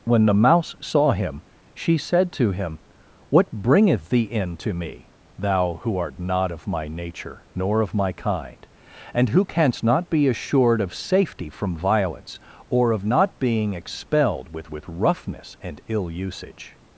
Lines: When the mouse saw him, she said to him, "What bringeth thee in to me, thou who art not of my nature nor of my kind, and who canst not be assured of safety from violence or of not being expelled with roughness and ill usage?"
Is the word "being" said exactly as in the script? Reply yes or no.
yes